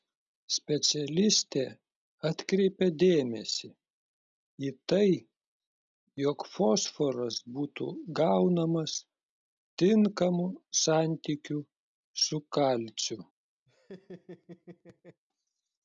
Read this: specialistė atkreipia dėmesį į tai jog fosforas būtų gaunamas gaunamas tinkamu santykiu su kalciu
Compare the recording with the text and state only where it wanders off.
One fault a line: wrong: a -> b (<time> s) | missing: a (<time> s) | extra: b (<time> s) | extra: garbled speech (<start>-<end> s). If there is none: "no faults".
missing: gaunamas (9.0 s)